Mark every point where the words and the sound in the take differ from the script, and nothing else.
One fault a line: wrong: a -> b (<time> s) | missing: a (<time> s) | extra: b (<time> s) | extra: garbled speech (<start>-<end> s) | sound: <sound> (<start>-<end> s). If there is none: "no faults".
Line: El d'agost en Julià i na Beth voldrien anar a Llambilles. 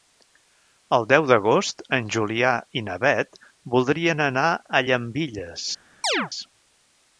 extra: deu (1.1 s)
sound: chirp (6.0-6.3 s)